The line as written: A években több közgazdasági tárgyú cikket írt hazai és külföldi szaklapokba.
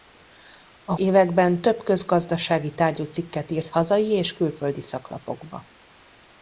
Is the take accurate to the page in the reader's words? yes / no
yes